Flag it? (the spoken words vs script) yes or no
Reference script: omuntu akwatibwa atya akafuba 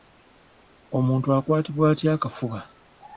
no